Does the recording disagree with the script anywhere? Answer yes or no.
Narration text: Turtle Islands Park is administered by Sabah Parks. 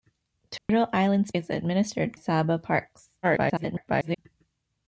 yes